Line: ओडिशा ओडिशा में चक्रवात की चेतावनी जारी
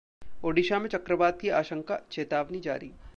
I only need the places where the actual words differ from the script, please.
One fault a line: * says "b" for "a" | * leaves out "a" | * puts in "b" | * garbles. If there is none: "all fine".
* leaves out "ओडिशा"
* puts in "आशंका"